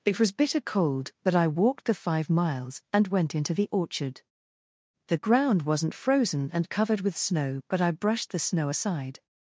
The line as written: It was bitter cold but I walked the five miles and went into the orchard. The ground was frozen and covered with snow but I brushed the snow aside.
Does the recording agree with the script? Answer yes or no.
no